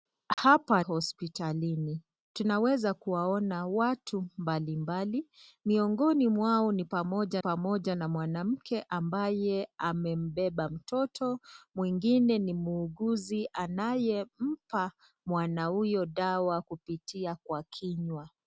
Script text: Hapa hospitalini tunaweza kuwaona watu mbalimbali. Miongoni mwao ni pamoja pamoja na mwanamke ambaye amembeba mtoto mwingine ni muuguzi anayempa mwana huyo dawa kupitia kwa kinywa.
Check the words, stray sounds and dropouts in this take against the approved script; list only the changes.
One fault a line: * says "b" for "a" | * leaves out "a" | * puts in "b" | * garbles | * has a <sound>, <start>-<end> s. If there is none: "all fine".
* has a dropout, 0.3-0.4 s